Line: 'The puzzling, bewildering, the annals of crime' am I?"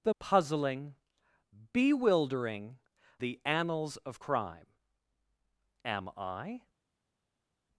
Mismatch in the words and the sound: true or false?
false